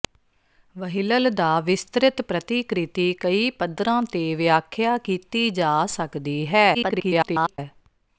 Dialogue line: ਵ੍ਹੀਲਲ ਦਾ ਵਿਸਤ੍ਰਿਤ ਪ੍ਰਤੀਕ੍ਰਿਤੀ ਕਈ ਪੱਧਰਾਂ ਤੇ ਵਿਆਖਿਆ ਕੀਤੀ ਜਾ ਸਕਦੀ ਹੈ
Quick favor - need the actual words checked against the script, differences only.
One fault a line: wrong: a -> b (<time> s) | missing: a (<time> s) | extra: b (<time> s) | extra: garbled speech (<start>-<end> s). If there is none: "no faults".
extra: garbled speech (6.7-7.6 s)